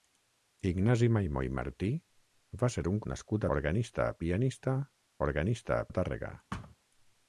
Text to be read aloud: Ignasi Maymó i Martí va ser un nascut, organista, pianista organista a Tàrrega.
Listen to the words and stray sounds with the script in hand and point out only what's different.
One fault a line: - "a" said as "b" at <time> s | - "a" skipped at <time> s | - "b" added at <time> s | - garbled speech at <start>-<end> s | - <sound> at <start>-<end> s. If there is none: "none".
- thud at 6.5-6.8 s